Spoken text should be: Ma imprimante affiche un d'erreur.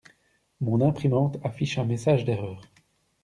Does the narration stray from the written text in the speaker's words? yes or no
yes